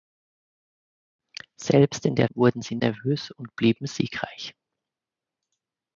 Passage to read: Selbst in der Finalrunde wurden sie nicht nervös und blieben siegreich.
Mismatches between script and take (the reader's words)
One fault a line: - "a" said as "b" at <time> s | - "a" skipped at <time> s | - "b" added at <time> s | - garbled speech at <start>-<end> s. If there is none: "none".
- "Finalrunde" skipped at 2.3 s
- "nicht" skipped at 2.8 s